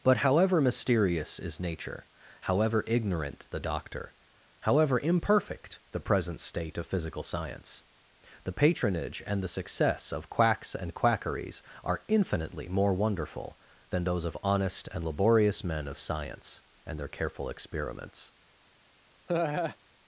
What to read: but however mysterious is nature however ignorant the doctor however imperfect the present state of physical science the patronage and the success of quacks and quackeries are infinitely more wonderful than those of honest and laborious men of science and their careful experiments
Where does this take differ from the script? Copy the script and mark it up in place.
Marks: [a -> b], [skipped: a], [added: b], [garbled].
but however mysterious is nature however ignorant the doctor however imperfect the present state of physical science the patronage and the success of quacks and quackeries are infinitely more wonderful than those of honest and laborious men of science and their careful experiments